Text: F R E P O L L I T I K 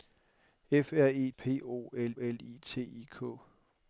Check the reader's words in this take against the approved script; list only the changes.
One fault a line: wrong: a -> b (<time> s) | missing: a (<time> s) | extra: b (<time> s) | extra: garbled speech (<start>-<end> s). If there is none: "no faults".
no faults